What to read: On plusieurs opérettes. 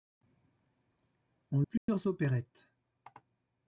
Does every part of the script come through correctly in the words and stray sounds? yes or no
no